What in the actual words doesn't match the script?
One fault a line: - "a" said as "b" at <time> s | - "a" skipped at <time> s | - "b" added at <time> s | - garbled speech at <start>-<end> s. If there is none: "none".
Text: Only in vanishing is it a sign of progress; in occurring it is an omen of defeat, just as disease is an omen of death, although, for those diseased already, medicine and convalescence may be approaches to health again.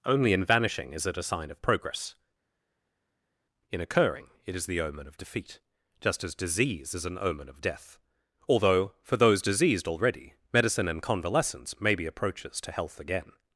- "an" said as "the" at 4.7 s